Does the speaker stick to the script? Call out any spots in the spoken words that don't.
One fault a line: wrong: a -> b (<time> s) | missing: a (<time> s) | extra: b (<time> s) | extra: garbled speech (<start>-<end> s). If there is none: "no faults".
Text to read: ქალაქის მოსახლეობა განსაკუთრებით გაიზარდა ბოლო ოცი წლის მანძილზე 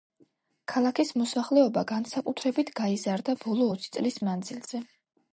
no faults